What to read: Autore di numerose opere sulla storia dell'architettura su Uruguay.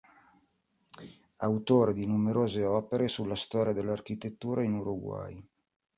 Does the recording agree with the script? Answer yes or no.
no